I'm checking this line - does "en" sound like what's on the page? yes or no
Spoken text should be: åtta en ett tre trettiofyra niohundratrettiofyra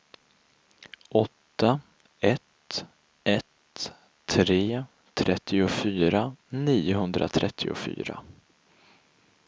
no